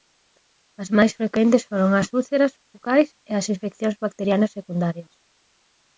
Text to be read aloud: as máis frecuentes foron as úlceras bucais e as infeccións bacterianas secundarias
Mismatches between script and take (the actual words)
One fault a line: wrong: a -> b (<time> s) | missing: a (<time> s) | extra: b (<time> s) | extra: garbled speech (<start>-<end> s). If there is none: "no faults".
no faults